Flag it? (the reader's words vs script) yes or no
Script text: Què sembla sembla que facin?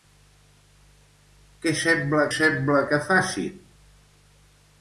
no